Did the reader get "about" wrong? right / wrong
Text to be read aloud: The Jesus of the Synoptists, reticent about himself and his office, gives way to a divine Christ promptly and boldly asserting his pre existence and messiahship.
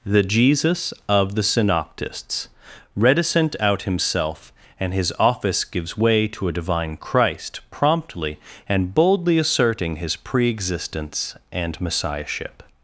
wrong